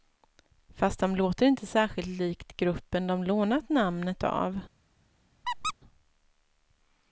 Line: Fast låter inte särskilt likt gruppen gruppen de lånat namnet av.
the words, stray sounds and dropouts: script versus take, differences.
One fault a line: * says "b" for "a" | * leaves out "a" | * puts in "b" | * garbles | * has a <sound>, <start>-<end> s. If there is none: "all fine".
* puts in "de"
* leaves out "gruppen"
* has a squeak, 5.4-5.7 s